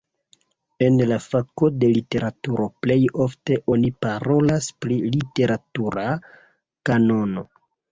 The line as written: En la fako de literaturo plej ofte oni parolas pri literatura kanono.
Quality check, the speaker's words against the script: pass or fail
pass